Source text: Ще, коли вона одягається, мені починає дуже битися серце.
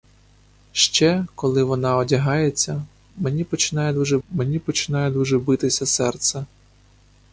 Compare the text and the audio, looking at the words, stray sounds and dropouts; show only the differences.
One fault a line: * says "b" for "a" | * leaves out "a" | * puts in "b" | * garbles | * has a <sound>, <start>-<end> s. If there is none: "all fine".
* puts in "мені починає дуже"